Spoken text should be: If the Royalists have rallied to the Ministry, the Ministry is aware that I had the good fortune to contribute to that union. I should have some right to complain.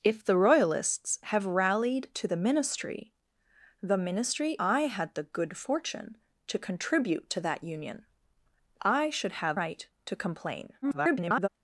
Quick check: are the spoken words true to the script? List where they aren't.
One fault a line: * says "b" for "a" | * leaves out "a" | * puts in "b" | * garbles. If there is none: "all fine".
* leaves out "is aware that"
* leaves out "some"
* garbles